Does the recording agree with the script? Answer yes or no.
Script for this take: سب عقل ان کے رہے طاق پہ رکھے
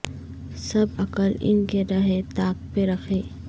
yes